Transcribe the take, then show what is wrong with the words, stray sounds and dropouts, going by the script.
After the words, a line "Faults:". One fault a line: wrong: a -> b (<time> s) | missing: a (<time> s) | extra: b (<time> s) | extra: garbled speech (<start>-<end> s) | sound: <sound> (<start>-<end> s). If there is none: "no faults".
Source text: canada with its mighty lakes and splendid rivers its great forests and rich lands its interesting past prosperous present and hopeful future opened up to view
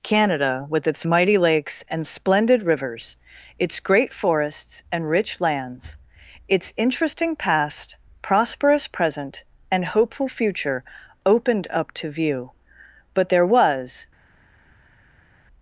canada with its mighty lakes and splendid rivers its great forests and rich lands its interesting past prosperous present and hopeful future opened up to view but there was
Faults:
extra: but there was (13.1 s)